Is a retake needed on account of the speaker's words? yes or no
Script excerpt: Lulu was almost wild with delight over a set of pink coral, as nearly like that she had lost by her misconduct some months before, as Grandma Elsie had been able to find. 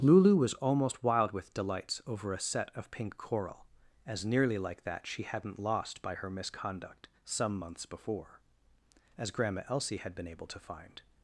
yes